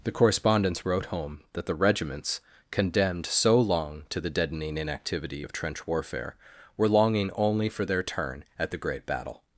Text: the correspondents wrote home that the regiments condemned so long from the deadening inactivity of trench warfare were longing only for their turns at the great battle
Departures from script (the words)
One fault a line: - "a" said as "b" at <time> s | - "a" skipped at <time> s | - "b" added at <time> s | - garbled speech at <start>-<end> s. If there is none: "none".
- "from" said as "to" at 4.1 s
- "turns" said as "turn" at 8.0 s